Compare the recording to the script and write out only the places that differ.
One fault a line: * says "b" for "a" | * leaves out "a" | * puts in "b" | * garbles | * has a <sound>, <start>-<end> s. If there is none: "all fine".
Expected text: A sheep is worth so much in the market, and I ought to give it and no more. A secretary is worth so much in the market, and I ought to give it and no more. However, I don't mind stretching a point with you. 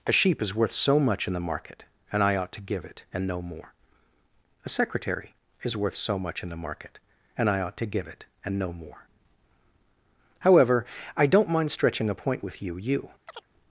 * puts in "you"
* has a chirp, 13.3-13.5 s